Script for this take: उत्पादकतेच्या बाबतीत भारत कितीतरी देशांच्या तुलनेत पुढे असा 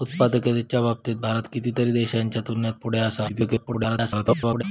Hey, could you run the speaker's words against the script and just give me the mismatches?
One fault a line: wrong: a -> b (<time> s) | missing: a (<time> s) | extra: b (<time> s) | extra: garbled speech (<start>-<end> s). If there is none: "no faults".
extra: garbled speech (3.3-4.6 s)